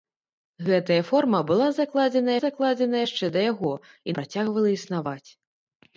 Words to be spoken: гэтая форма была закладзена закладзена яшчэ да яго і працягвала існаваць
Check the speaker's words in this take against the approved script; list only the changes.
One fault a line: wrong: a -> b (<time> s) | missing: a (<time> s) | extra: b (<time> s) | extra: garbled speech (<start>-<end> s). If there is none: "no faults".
no faults